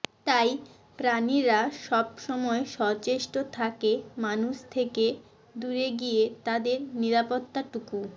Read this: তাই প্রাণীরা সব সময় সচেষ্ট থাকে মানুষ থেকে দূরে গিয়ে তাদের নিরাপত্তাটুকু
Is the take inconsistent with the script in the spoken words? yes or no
no